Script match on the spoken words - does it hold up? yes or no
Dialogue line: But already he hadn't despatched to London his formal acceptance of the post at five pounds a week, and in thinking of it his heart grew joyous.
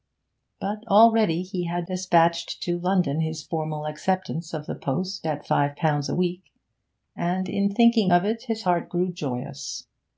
no